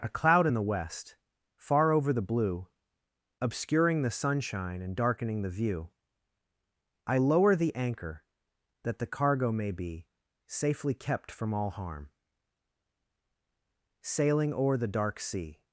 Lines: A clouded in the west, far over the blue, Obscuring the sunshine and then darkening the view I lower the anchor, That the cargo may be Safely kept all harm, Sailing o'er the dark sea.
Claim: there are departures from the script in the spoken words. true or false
true